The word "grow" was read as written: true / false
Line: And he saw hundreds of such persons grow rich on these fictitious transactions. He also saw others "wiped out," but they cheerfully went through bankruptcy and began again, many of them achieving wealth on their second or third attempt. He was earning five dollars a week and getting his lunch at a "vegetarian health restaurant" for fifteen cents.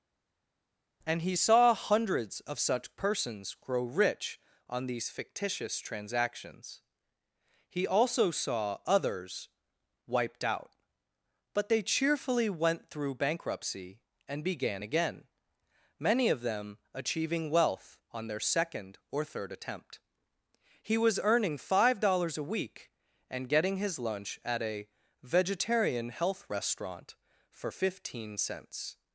true